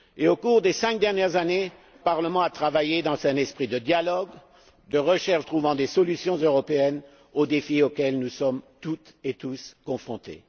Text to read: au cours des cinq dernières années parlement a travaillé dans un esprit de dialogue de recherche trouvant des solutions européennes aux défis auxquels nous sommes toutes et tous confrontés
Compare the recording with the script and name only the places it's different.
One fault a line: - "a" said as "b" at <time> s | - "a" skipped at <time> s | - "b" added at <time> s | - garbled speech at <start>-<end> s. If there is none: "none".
none